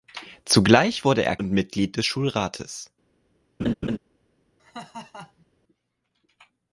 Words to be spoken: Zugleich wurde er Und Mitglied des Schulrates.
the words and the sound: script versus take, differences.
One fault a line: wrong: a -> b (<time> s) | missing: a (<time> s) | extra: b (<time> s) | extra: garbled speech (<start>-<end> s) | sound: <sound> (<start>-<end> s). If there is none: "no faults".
sound: laugh (3.6-4.0 s)
sound: laugh (4.6-5.5 s)